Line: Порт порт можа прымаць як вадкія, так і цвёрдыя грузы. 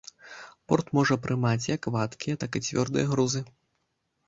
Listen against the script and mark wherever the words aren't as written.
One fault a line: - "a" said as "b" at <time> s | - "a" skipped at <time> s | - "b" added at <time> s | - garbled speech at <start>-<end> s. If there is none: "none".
- "порт" skipped at 0.9 s